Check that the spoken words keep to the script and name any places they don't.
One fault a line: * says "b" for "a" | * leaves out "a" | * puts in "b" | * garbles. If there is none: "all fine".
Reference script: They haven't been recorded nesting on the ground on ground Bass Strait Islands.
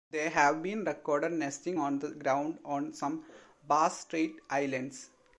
* says "have" for "haven't"
* says "some" for "ground"